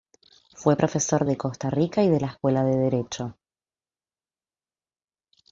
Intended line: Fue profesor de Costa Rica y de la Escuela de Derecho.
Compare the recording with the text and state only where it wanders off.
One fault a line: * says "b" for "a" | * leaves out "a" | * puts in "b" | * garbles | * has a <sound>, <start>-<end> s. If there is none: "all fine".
all fine